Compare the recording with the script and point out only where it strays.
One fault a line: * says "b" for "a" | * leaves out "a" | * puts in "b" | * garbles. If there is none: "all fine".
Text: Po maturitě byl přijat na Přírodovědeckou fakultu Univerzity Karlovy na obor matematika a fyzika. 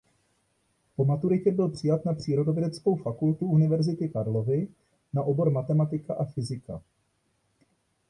all fine